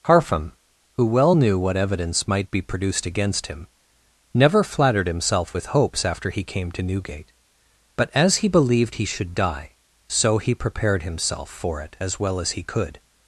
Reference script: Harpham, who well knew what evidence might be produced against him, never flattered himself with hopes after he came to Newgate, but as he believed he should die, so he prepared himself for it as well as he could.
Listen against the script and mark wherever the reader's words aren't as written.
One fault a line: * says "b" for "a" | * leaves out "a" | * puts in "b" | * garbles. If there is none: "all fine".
all fine